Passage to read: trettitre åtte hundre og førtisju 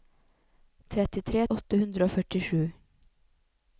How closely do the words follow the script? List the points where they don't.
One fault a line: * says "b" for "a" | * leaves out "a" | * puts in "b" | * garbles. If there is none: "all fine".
all fine